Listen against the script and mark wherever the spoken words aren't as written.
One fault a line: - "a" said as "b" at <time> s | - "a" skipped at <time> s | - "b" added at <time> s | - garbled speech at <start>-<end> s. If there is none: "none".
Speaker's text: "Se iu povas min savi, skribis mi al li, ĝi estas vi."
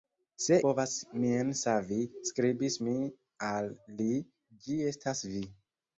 - "iu" skipped at 0.6 s